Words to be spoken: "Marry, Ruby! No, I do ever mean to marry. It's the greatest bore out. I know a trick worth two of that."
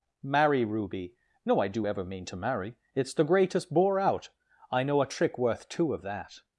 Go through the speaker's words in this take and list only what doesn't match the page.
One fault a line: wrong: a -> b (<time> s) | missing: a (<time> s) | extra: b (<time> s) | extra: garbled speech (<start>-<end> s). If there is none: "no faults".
no faults